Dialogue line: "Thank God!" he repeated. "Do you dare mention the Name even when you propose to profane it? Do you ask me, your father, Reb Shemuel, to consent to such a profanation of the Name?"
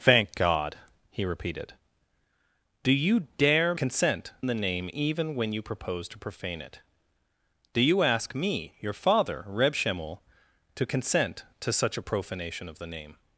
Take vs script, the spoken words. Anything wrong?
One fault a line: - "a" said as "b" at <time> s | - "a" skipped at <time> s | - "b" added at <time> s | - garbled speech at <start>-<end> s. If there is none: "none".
- "mention" said as "consent" at 3.7 s